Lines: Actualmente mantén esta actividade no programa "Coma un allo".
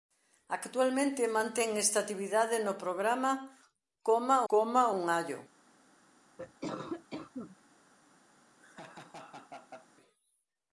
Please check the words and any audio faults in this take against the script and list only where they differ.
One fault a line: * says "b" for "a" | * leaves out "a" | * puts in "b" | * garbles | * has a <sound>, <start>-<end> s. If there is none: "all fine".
* puts in "coma"
* has a cough, 6.4-7.6 s
* has a laugh, 8.6-9.9 s